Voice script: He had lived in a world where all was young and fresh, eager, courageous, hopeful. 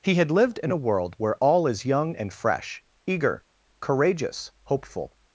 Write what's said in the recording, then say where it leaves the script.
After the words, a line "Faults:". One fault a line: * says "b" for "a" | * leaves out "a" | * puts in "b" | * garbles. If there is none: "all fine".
He had lived in a world where all is young and fresh, eager, courageous, hopeful.
Faults:
* says "is" for "was"